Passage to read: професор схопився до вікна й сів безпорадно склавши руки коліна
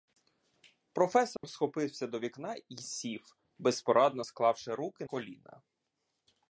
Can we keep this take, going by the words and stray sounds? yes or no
no